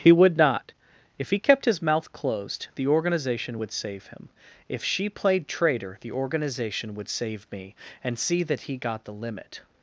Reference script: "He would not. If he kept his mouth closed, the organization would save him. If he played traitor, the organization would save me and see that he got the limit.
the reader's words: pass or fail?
fail